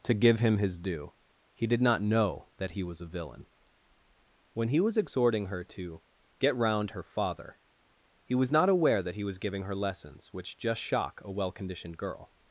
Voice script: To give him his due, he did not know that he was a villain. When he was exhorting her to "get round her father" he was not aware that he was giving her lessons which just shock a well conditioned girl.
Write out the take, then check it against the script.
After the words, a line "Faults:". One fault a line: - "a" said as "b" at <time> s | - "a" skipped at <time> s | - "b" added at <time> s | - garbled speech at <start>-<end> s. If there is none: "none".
To give him his due, he did not know that he was a villain. When he was exhorting her to "get round her father" he was not aware that he was giving her lessons which just shock a well conditioned girl.
Faults:
none